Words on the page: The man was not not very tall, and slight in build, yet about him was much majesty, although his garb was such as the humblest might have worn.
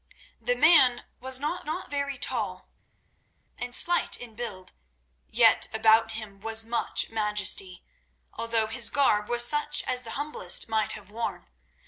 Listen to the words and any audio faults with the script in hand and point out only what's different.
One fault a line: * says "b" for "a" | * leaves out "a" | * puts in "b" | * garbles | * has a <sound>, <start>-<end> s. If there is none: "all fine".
all fine